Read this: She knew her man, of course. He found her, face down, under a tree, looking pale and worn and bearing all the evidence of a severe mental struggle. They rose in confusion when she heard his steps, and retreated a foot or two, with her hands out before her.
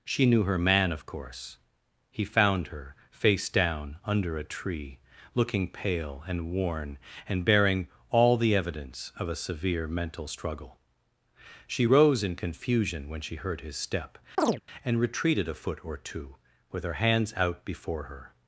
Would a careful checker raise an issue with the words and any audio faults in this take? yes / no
yes